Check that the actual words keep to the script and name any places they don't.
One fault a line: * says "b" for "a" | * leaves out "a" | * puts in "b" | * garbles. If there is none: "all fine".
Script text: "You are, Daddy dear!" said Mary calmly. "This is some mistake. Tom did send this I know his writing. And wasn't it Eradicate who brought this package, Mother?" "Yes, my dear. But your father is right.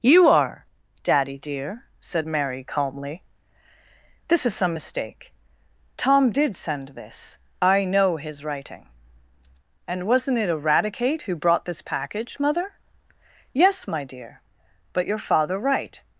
* leaves out "is"